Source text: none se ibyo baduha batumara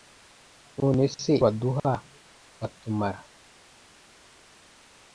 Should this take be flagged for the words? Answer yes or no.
yes